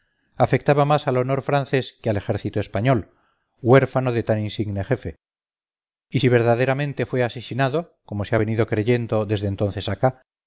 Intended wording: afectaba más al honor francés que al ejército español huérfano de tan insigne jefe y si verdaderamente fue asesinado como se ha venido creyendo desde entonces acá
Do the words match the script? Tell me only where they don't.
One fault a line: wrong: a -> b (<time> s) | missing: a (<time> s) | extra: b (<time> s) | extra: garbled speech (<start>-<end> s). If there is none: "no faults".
no faults